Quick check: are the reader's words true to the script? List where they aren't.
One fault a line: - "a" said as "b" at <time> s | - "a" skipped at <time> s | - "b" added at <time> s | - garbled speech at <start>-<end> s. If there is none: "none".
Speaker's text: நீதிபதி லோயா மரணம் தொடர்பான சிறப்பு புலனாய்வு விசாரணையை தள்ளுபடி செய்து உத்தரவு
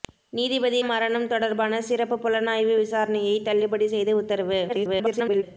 - "லோயா" skipped at 0.8 s
- garbled speech at 4.7-5.4 s